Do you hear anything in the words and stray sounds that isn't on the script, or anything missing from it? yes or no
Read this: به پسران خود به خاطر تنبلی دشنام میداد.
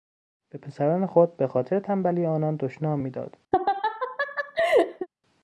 yes